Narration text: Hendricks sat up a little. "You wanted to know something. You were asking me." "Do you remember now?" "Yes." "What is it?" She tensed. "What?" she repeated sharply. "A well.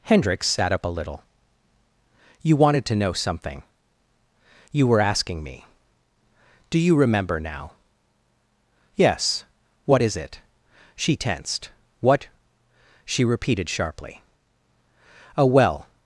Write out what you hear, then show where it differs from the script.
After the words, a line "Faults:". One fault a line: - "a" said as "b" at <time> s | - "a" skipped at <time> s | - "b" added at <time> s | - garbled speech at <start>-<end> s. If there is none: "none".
Hendricks sat up a little. "You wanted to know something. You were asking me." "Do you remember now?" "Yes." "What is it?" She tensed. "What?" she repeated sharply. "A well.
Faults:
none